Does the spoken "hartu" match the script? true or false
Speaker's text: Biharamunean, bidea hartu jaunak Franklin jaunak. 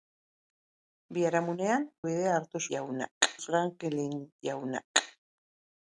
true